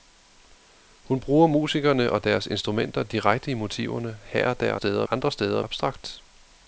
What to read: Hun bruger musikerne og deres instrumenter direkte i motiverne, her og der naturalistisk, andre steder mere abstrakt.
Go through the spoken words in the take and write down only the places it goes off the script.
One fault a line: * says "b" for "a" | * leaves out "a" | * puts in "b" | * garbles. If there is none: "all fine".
* says "steder" for "naturalistisk"
* leaves out "mere"